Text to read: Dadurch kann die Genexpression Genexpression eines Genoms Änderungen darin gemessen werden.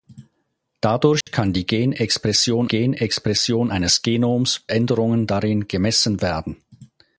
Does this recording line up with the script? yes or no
yes